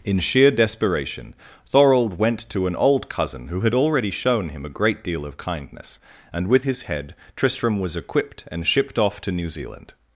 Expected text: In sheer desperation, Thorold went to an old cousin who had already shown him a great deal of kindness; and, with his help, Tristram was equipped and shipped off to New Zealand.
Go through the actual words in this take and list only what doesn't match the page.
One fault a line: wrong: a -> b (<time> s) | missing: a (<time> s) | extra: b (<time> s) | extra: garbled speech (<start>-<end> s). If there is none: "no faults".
wrong: help -> head (6.8 s)